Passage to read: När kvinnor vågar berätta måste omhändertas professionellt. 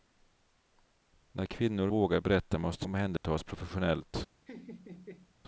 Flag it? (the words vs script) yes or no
no